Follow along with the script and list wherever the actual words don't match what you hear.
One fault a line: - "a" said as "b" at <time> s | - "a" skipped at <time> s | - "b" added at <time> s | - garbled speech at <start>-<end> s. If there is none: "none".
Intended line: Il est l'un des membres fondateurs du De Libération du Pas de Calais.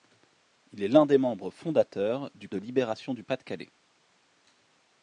none